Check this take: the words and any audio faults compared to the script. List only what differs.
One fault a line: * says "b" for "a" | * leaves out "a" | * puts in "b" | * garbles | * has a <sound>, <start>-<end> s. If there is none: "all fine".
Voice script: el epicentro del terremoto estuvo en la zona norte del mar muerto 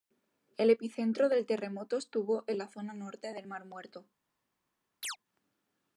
* has a chirp, 5.0-5.2 s